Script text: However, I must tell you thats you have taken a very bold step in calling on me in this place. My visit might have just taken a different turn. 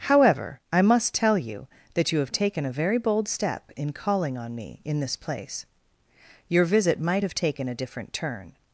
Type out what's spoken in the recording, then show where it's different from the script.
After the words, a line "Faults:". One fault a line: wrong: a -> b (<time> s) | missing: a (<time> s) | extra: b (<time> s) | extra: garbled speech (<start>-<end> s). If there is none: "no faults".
However, I must tell you that you have taken a very bold step in calling on me in this place. Your visit might have taken a different turn.
Faults:
wrong: thats -> that (1.9 s)
wrong: My -> Your (6.5 s)
missing: just (7.3 s)